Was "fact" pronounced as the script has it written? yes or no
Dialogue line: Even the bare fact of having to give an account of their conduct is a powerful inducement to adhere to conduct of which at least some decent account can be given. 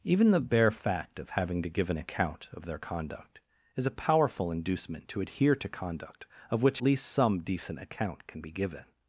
yes